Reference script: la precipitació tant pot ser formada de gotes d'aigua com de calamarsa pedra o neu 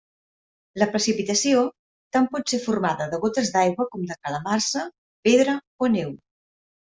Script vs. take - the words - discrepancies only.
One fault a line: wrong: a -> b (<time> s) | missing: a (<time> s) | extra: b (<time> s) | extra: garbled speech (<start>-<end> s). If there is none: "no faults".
no faults